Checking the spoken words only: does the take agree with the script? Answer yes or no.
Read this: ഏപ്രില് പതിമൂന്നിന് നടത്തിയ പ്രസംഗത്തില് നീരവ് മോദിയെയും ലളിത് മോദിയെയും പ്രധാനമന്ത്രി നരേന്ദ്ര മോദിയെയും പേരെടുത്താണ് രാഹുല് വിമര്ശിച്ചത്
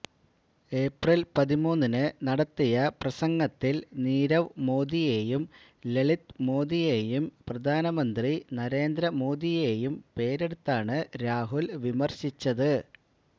yes